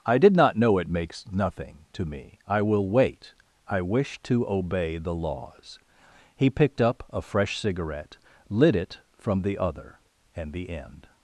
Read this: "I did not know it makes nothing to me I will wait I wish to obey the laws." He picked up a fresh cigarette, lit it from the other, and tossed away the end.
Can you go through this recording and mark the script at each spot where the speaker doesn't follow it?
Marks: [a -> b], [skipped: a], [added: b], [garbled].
"I did not know it makes nothing to me I will wait I wish to obey the laws." He picked up a fresh cigarette, lit it from the other, and [skipped: tossed away] the end.